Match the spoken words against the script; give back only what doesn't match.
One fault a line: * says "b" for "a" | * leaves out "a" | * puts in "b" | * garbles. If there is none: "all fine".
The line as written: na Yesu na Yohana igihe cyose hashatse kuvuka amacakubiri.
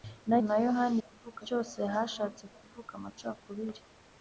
* leaves out "Yesu"
* says "kuvuka" for "igihe"